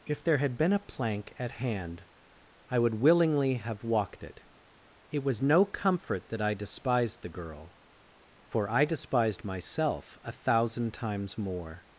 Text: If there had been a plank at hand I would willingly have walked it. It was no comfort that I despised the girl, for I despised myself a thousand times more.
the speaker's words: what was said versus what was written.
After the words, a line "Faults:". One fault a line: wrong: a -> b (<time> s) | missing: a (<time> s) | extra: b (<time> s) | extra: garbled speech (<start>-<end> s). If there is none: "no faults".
If there had been a plank at hand I would willingly have walked it. It was no comfort that I despised the girl, for I despised myself a thousand times more.
Faults:
no faults